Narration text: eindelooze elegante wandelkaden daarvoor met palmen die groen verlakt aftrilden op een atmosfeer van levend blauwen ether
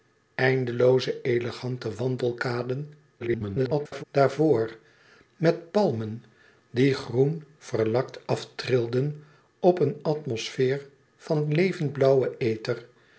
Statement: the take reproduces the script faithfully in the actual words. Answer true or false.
false